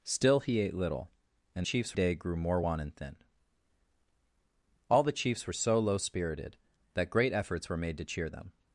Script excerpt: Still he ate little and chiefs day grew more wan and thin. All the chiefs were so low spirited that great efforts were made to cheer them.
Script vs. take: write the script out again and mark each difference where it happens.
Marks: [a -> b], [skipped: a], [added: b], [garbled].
Still he ate little and chiefs day grew more wan and thin. All the chiefs were so low spirited that great efforts were made to cheer them.